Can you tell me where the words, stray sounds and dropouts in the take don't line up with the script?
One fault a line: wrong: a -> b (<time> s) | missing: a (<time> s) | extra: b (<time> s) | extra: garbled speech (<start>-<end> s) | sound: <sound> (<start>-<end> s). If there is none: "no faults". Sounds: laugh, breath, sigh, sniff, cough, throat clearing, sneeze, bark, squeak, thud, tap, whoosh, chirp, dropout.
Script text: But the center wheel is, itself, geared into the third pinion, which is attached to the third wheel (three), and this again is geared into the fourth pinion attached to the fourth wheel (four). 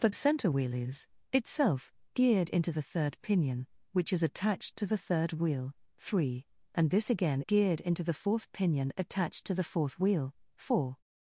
missing: the (0.1 s)
missing: is (7.4 s)